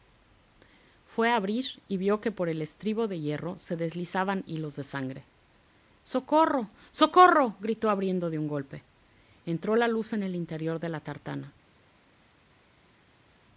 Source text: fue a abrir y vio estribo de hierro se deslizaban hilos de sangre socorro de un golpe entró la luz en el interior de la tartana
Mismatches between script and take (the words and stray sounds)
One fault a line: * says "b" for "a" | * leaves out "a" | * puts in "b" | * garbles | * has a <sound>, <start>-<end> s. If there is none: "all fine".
* puts in "que por el"
* puts in "socorro gritó abriendo"